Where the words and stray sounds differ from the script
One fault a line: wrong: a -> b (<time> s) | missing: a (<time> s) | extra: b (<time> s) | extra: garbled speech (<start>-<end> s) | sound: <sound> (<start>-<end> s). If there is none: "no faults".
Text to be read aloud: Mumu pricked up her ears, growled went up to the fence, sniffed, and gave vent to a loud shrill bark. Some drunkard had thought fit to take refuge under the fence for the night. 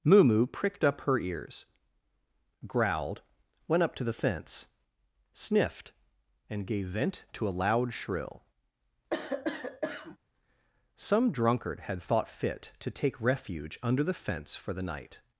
missing: bark (8.4 s)
sound: cough (9.1-10.2 s)